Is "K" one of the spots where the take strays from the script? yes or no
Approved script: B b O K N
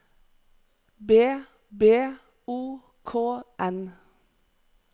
no